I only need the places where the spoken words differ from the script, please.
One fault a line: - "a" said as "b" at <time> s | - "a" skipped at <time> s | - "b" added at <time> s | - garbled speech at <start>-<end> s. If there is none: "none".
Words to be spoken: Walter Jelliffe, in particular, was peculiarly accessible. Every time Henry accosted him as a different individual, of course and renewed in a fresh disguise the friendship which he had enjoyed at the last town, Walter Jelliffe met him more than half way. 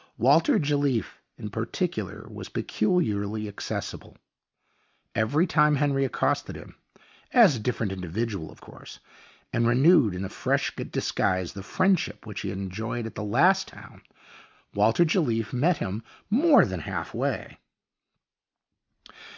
none